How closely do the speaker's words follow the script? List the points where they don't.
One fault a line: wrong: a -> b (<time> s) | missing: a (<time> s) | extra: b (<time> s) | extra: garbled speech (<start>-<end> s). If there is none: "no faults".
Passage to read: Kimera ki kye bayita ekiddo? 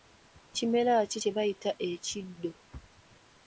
no faults